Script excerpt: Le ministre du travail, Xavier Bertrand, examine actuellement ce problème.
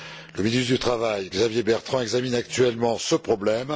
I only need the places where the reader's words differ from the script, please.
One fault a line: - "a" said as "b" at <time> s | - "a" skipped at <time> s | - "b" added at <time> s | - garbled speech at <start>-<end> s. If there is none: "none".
none